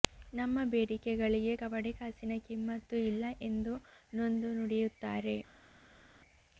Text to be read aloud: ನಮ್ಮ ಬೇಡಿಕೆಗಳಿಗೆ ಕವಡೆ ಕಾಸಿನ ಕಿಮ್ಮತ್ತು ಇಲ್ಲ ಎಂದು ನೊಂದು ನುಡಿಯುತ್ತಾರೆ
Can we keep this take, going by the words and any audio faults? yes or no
yes